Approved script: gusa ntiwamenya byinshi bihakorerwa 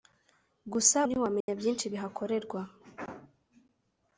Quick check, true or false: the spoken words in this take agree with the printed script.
true